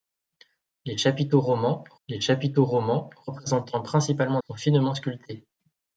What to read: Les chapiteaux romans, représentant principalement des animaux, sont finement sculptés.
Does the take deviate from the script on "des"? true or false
true